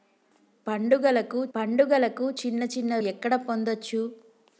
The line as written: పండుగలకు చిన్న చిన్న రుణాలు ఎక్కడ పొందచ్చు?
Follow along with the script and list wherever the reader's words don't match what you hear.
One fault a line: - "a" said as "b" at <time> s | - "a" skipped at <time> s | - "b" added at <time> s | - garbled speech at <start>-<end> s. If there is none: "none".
- "పండుగలకు" added at 1.6 s
- "రుణాలు" skipped at 3.0 s